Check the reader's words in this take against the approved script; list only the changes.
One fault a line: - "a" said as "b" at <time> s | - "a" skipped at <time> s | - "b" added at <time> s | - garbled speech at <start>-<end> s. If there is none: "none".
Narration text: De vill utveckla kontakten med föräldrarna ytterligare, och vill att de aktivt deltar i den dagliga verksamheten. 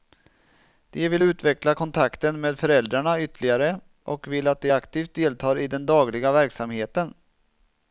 none